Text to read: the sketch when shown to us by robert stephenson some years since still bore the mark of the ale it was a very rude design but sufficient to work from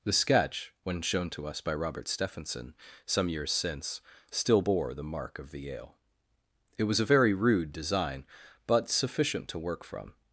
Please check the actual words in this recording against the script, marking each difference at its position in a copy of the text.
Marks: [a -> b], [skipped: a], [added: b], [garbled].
the sketch when shown to us by robert stephenson some years since still bore the mark of the ale it was a very rude design but sufficient to work from